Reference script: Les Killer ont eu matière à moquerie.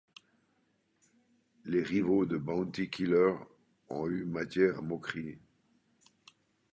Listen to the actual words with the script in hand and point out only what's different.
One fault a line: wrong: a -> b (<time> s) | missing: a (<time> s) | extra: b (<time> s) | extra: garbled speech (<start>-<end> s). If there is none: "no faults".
extra: rivaux de Bounty (1.8 s)